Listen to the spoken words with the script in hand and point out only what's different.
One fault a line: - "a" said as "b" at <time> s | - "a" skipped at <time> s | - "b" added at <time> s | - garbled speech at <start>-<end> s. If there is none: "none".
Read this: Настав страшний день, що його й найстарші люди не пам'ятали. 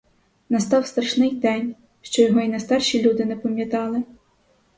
none